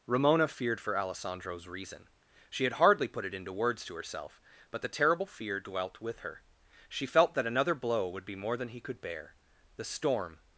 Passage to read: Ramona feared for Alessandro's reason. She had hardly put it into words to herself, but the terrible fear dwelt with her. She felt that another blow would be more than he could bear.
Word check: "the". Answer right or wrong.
right